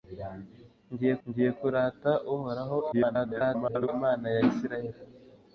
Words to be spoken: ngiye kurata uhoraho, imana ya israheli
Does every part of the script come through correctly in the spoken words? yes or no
no